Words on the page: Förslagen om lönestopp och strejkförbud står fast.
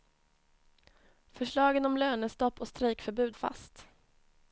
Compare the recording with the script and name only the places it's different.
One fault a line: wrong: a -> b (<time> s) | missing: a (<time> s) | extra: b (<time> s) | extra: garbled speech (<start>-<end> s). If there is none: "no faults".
missing: står (3.4 s)